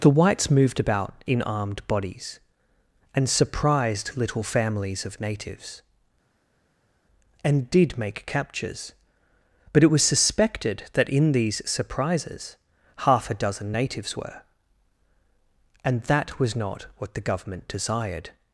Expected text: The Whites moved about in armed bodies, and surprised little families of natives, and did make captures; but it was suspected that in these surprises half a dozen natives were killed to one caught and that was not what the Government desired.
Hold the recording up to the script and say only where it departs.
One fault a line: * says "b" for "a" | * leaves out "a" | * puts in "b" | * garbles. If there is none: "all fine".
* leaves out "killed to one caught"